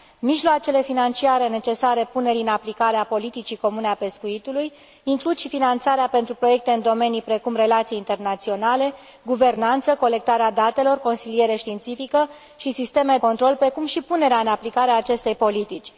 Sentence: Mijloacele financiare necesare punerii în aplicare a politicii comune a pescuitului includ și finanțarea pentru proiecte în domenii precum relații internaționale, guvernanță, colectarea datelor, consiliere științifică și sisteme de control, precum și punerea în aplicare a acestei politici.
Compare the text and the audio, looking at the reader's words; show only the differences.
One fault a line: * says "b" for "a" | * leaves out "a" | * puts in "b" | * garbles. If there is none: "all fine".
* leaves out "de"